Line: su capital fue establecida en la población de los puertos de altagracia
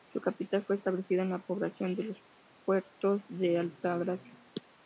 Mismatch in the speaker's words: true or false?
false